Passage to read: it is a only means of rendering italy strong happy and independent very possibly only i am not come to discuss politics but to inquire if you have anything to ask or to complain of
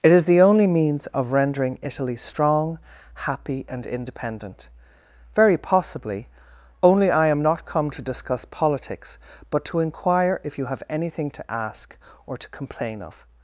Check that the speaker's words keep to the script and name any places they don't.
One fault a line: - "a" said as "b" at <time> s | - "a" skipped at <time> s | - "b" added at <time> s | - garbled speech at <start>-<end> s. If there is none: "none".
- "a" said as "the" at 0.2 s